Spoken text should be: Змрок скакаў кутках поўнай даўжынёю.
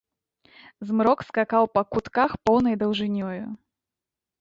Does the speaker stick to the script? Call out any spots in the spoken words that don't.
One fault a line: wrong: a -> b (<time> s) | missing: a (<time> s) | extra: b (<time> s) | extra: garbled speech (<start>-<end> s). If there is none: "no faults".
extra: па (1.8 s)